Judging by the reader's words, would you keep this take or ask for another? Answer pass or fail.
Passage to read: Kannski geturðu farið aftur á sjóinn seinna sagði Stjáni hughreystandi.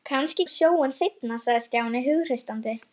fail